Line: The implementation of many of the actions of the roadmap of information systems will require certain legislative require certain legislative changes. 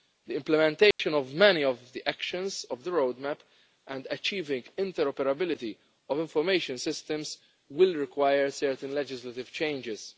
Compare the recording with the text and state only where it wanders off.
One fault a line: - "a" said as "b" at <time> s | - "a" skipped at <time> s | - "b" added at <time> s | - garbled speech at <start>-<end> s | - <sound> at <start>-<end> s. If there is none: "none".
- dropout at 0.9-1.0 s
- "and achieving interoperability" added at 3.9 s
- "require certain legislative" skipped at 9.5 s